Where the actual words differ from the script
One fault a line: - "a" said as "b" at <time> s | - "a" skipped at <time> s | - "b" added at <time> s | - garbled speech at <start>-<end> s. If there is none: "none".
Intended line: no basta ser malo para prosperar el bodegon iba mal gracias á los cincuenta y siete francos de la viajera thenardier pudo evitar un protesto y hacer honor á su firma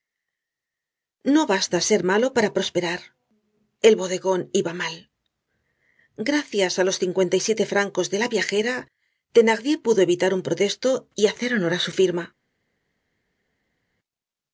none